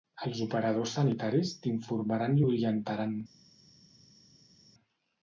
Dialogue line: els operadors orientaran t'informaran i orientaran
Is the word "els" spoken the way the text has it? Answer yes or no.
yes